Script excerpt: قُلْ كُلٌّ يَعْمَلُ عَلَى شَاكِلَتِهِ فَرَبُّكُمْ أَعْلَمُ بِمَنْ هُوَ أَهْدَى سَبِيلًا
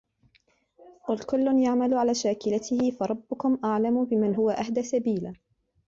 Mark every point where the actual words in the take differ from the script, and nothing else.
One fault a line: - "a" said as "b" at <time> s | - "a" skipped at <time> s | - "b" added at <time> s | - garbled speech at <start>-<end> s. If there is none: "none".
none